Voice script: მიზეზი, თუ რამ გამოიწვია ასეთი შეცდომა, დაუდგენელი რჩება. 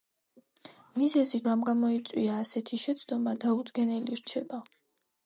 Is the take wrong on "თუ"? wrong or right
wrong